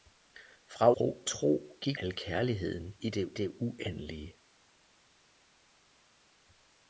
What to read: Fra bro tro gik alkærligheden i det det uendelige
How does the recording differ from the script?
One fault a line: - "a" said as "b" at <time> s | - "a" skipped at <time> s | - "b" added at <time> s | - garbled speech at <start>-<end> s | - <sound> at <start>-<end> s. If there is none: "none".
none